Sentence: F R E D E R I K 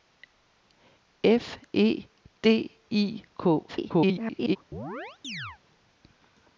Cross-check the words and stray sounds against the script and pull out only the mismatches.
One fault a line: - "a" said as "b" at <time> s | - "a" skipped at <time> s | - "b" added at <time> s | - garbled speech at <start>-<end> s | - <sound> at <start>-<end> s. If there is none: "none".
- "R" skipped at 1.6 s
- "E R" skipped at 2.8 s
- garbled speech at 3.7-4.6 s
- chirp at 4.7-5.6 s